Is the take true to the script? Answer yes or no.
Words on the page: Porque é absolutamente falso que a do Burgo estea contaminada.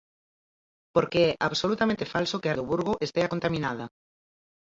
yes